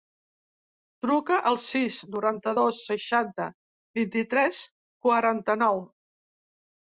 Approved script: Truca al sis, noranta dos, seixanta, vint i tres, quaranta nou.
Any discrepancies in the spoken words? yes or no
no